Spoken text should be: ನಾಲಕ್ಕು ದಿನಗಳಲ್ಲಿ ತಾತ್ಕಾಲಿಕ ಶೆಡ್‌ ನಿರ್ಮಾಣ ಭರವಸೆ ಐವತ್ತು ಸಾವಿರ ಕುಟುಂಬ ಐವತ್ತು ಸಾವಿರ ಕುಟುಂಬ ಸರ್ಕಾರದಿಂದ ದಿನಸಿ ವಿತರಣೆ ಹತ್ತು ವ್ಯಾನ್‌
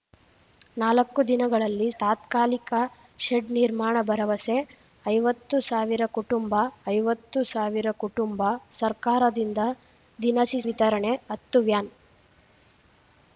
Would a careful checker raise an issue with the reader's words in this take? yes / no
no